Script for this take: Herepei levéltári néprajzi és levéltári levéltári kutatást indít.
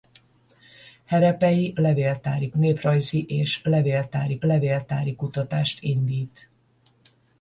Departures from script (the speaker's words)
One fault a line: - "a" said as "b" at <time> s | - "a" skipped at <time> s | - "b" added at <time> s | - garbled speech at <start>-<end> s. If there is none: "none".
none